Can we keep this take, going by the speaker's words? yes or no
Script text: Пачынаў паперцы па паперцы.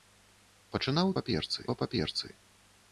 yes